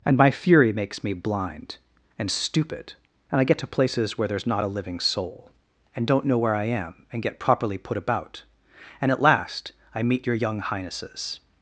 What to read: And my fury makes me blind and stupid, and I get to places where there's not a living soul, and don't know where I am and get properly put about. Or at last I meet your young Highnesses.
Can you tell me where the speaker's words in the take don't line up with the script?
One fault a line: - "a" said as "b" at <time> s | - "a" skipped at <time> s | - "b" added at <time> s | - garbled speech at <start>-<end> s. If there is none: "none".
- "Or" said as "And" at 9.0 s